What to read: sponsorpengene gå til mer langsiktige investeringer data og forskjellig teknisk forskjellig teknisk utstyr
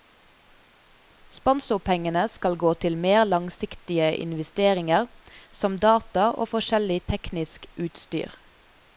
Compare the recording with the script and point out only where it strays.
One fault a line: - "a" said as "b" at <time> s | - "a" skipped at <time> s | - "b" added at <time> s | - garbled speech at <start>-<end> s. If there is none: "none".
- "skal" added at 2.4 s
- "som" added at 5.6 s
- "forskjellig teknisk" skipped at 7.7 s